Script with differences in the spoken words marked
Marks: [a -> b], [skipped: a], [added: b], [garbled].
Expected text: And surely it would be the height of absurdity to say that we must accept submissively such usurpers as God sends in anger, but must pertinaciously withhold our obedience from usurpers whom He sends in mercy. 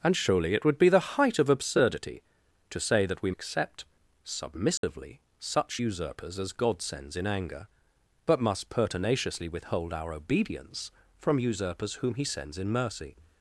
And surely it would be the height of absurdity to say that we [skipped: must] accept submissively such usurpers as God sends in anger, but must pertinaciously withhold our obedience from usurpers whom He sends in mercy.